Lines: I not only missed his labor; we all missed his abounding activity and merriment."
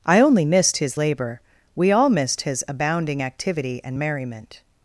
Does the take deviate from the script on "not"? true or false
true